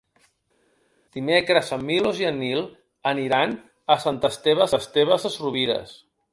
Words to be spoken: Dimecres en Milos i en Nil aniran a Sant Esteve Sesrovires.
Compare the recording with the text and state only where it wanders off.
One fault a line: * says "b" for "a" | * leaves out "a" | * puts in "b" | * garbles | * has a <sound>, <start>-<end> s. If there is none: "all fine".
* puts in "Esteve"